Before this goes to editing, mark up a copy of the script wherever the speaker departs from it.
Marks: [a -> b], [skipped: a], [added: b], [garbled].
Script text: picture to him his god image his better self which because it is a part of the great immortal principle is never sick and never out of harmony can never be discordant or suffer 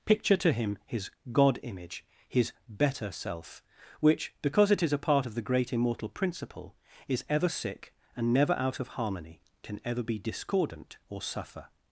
picture to him his god image his better self which because it is a part of the great immortal principle is [never -> ever] sick and never out of harmony can [never -> ever] be discordant or suffer